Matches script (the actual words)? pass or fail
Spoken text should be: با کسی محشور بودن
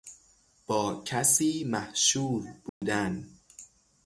pass